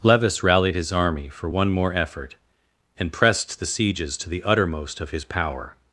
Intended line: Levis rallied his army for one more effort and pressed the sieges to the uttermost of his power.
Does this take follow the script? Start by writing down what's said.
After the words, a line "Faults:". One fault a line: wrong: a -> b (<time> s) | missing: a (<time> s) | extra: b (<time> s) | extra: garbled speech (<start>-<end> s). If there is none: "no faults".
Levis rallied his army for one more effort and pressed the sieges to the uttermost of his power.
Faults:
no faults